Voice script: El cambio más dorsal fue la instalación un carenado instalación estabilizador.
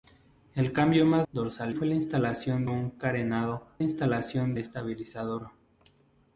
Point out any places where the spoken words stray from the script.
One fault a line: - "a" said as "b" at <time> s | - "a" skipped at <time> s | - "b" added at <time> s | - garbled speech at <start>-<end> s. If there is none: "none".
none